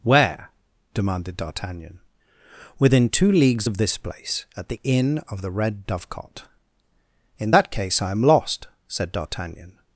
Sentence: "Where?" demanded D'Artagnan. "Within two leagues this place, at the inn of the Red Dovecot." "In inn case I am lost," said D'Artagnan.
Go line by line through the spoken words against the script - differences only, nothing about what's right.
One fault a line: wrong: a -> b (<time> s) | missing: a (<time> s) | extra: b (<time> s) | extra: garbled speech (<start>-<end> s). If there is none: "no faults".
extra: of (3.7 s)
wrong: inn -> that (7.5 s)